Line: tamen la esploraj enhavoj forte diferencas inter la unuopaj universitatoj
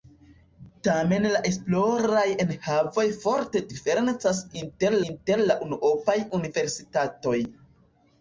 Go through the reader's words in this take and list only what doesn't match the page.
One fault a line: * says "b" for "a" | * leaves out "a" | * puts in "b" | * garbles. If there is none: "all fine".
* puts in "inter"